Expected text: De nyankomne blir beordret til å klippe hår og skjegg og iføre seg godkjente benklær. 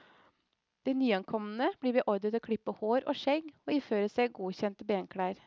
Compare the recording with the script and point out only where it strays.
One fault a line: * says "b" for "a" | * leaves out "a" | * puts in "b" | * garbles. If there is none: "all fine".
all fine